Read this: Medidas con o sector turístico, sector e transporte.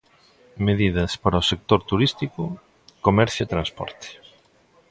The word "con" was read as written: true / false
false